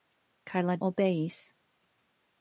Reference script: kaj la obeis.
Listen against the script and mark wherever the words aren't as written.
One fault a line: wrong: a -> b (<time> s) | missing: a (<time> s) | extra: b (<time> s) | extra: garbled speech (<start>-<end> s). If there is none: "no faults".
no faults